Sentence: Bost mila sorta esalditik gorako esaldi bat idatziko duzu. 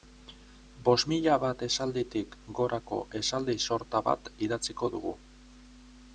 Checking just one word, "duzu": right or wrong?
wrong